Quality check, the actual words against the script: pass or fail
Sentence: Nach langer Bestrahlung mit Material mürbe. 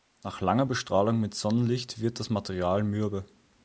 fail